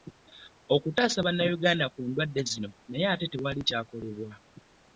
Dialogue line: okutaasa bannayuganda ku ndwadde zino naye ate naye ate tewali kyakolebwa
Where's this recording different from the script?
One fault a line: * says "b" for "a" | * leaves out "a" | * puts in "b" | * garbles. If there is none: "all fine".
* leaves out "naye ate"